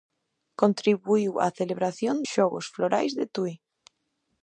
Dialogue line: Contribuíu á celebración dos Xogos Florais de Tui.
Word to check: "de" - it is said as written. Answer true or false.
true